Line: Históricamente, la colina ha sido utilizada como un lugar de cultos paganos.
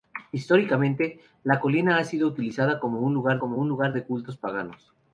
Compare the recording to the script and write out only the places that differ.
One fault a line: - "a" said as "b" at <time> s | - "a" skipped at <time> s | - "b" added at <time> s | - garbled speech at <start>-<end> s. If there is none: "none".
- "como un lugar" added at 3.4 s